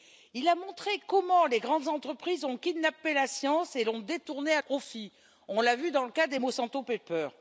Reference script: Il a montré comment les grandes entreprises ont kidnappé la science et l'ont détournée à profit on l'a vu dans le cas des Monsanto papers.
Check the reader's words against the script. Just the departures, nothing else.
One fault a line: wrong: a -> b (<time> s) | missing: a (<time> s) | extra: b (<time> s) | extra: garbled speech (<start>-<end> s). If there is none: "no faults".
no faults